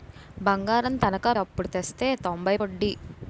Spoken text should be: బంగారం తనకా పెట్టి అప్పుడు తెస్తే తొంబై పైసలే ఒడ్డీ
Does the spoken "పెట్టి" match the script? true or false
false